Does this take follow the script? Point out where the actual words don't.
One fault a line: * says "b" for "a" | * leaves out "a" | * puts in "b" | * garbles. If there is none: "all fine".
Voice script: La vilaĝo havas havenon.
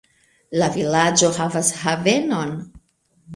all fine